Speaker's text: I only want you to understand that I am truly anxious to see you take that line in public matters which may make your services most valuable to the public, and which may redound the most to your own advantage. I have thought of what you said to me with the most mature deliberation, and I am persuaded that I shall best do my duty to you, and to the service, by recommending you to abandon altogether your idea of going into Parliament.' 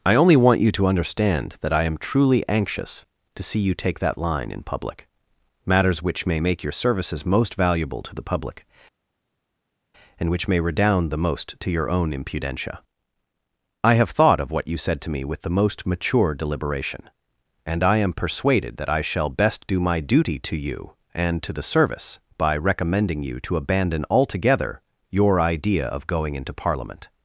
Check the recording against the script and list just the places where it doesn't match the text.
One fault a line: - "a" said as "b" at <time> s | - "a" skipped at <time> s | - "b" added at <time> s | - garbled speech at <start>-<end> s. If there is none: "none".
- "advantage" said as "impudentia" at 12.1 s